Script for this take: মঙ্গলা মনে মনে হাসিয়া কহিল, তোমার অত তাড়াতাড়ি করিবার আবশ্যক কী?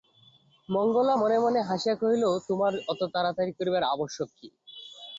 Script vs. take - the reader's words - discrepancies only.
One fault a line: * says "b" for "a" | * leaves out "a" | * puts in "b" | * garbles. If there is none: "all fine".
all fine